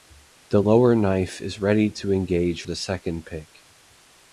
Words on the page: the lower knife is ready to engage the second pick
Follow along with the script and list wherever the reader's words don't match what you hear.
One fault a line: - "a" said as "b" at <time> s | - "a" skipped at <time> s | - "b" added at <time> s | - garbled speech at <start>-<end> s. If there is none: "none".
none